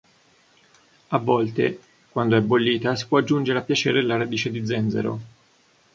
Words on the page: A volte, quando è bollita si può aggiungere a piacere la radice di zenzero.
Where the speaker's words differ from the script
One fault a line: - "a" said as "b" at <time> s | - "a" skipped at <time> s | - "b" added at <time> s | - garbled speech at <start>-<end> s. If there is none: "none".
none